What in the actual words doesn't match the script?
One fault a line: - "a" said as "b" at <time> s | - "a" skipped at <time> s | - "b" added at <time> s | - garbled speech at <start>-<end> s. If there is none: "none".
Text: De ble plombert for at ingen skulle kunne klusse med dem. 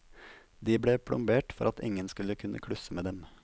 none